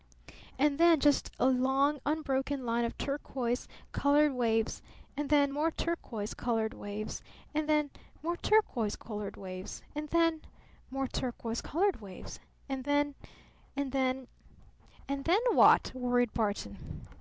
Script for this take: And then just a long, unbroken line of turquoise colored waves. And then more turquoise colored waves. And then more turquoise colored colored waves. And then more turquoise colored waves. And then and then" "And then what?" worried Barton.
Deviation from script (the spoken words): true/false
true